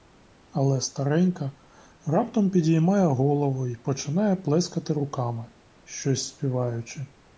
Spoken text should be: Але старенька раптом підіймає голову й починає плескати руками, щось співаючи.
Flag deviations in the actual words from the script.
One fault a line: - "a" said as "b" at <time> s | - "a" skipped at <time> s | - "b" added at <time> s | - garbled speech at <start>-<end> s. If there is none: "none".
none